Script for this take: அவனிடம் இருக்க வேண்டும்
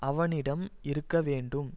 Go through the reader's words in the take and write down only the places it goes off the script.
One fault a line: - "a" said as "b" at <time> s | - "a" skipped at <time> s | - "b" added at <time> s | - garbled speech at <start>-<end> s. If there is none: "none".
none